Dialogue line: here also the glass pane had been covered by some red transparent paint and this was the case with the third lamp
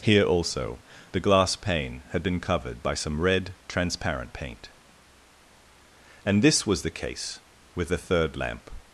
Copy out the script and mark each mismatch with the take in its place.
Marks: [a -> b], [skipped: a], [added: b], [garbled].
here also the glass pane had been covered by some red transparent paint and this was the case with the third lamp